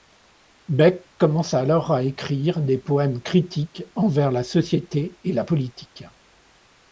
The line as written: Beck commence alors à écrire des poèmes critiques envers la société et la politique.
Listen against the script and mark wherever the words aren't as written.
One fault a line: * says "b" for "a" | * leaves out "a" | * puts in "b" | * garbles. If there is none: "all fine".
all fine